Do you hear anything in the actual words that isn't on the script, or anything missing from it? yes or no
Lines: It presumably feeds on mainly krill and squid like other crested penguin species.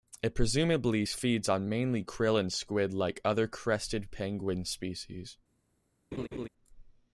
no